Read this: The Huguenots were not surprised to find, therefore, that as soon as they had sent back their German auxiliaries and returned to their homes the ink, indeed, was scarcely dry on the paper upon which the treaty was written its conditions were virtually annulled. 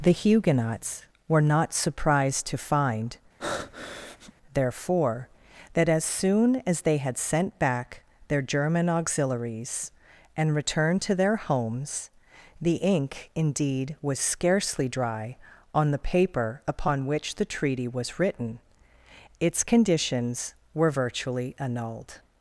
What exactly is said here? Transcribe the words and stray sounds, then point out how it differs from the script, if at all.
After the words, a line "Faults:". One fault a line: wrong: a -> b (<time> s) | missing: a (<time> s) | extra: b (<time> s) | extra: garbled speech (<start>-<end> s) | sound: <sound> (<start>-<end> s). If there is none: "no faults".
The Huguenots were not surprised to find, therefore, that as soon as they had sent back their German auxiliaries and returned to their homes the ink, indeed, was scarcely dry on the paper upon which the treaty was written its conditions were virtually annulled.
Faults:
sound: breath (3.4-4.3 s)